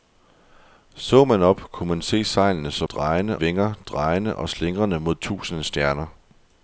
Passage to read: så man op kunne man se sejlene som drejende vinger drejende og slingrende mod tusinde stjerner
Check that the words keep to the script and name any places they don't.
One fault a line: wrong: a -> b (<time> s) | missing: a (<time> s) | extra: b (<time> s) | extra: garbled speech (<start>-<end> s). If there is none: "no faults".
no faults